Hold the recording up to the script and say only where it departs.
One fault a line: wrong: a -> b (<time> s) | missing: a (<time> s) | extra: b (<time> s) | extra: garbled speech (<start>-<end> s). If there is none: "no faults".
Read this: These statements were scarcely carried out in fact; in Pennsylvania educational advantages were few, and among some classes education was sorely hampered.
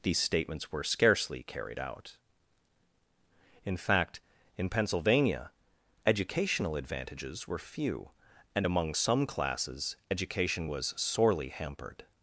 no faults